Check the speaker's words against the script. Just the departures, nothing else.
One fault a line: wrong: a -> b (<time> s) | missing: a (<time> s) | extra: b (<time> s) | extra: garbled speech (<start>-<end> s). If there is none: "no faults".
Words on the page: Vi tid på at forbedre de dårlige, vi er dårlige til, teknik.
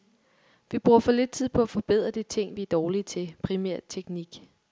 extra: bruger for lidt (0.8 s)
wrong: dårlige -> ting (2.2 s)
extra: primært (3.4 s)